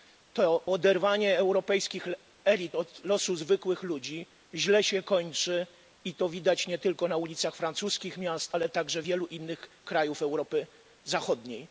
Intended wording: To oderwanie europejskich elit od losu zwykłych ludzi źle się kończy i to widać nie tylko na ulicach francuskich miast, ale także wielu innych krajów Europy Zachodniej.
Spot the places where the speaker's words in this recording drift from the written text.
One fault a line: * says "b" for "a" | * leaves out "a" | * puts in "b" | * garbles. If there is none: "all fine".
all fine